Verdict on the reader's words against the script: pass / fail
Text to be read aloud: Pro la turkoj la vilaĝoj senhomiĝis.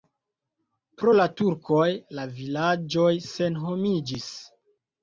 pass